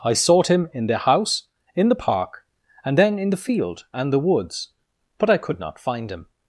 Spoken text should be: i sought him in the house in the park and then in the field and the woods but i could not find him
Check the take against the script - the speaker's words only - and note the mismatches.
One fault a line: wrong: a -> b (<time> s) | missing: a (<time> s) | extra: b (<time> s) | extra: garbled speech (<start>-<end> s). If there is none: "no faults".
no faults